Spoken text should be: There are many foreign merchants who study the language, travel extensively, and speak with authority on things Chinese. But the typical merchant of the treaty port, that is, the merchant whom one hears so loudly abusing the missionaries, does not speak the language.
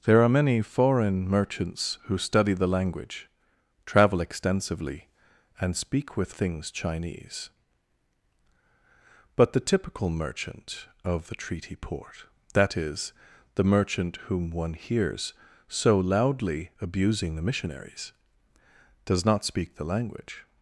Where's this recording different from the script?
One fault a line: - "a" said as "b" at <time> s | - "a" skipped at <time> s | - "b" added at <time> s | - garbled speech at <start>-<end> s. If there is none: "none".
- "authority on" skipped at 6.3 s